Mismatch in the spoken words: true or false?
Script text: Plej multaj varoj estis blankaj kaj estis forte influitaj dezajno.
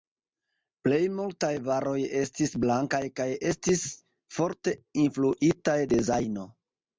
false